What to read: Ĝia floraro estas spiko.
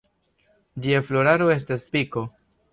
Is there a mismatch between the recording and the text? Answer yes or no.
no